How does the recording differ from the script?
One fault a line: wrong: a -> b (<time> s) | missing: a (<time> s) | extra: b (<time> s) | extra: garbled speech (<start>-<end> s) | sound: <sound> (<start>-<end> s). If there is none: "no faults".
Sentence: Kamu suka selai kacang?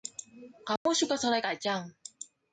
sound: dropout (0.8-0.9 s)